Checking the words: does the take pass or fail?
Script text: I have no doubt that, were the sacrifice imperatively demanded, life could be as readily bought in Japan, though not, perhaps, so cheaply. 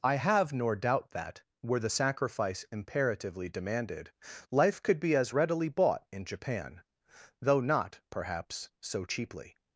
fail